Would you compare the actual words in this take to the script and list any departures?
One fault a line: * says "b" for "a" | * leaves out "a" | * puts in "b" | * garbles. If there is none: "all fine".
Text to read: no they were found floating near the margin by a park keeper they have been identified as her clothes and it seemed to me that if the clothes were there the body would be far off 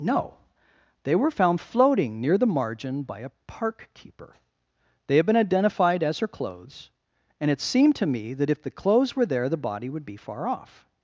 all fine